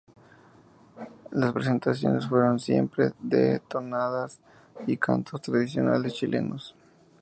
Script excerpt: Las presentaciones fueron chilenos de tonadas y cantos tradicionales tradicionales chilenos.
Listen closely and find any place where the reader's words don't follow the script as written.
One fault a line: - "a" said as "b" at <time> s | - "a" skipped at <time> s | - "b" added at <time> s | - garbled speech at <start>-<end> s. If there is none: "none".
- "chilenos" said as "siempre" at 2.6 s
- "tradicionales" skipped at 6.2 s